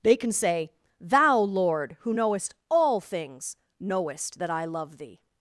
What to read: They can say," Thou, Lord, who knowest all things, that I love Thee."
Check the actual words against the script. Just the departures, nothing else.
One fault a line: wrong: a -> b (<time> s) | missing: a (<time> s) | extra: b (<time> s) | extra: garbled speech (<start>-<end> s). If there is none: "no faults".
extra: knowest (3.8 s)